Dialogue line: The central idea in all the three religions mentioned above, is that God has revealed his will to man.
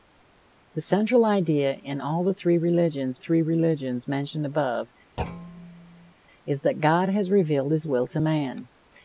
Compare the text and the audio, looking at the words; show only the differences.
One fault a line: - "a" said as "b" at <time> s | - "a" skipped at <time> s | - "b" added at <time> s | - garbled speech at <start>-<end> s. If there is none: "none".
- "three religions" added at 3.2 s